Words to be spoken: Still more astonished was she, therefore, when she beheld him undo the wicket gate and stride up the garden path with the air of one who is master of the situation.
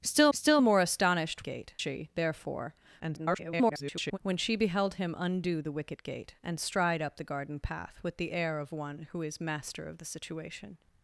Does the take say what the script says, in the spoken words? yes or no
no